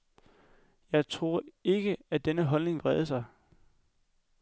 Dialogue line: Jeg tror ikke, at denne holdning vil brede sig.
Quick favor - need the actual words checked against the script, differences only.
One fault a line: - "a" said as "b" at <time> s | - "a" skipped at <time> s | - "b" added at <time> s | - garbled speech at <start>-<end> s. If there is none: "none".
- "vil" skipped at 2.8 s